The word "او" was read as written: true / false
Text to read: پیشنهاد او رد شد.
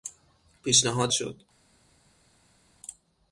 false